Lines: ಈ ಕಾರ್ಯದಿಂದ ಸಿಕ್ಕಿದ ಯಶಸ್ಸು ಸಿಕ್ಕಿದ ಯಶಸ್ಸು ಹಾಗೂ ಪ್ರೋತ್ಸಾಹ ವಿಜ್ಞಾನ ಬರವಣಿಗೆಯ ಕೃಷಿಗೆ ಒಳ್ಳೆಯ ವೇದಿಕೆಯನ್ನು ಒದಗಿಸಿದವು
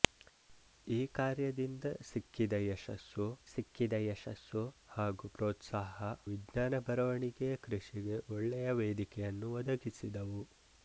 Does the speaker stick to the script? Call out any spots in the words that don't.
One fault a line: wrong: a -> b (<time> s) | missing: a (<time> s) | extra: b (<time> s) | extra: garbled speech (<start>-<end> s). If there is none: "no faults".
no faults